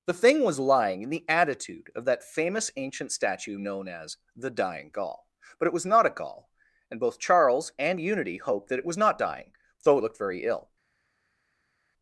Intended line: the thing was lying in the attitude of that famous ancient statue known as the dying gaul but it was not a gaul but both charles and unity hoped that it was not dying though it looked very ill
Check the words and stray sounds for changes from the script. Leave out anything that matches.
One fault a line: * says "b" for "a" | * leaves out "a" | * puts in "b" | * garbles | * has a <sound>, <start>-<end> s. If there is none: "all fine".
* says "and" for "but"